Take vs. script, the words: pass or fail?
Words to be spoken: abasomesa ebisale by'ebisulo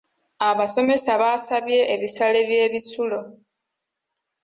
fail